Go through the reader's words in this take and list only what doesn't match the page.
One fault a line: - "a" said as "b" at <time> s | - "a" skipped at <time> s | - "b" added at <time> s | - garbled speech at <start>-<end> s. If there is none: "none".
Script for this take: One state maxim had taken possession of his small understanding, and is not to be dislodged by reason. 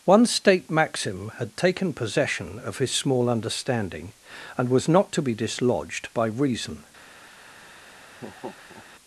- "is" said as "was" at 4.7 s